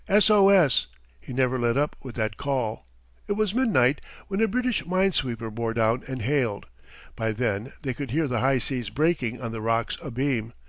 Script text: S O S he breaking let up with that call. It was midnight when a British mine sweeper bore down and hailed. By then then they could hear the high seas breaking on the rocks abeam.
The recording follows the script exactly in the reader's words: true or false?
false